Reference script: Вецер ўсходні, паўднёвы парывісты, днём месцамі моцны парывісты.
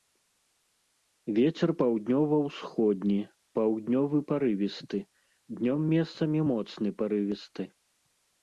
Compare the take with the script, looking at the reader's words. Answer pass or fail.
fail